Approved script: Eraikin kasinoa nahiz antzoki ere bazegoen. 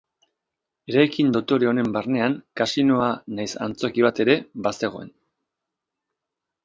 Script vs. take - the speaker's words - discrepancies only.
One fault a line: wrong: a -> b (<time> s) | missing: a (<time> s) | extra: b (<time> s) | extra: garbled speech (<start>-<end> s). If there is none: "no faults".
extra: dotore honen barnean (1.3 s)
extra: bat (4.0 s)